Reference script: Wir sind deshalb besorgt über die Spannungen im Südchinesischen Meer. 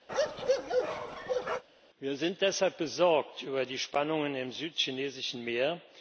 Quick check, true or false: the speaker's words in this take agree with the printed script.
true